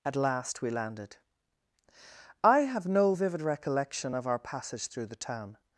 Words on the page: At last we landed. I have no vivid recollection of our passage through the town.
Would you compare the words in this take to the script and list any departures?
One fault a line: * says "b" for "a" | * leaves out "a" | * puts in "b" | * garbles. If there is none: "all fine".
all fine